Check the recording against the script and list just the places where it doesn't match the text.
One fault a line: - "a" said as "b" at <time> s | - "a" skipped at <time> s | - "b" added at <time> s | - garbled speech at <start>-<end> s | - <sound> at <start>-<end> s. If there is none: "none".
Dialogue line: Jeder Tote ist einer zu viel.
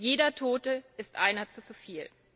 - "zu" added at 1.6 s